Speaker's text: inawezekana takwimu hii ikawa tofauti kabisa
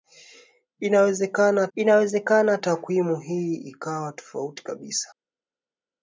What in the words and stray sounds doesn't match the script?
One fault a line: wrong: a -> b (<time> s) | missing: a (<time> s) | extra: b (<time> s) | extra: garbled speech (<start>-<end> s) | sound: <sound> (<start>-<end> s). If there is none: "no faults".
extra: inawezekana (1.7 s)